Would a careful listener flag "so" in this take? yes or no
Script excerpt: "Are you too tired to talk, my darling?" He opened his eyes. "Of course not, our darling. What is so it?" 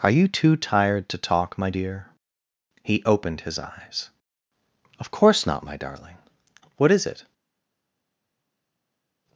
yes